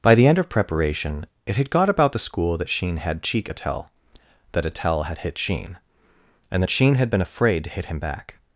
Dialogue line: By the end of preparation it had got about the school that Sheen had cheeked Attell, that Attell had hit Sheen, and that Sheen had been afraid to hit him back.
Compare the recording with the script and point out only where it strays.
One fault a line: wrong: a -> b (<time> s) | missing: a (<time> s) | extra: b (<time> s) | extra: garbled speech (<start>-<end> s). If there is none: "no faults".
wrong: cheeked -> cheek (3.2 s)